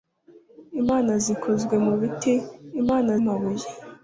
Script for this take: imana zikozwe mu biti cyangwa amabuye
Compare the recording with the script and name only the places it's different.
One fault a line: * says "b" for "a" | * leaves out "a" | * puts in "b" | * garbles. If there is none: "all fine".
* says "imana" for "cyangwa"